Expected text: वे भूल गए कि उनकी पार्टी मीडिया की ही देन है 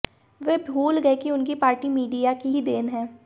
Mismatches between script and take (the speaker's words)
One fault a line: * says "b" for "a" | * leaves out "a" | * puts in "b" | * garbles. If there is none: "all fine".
all fine